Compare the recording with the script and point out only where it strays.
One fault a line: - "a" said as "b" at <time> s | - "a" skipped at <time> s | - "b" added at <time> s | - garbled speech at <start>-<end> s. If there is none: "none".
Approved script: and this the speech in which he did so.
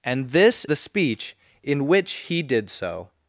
none